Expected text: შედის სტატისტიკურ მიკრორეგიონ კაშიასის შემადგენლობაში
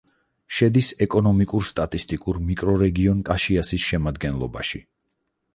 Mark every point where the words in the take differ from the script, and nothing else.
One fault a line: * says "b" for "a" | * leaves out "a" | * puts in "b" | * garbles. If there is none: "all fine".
* puts in "ეკონომიკურ"